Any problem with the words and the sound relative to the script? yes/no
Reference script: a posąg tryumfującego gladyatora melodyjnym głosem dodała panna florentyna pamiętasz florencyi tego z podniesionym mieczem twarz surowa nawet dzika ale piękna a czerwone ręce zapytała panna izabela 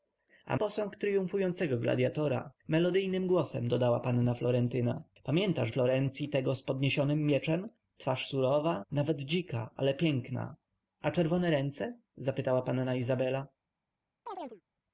yes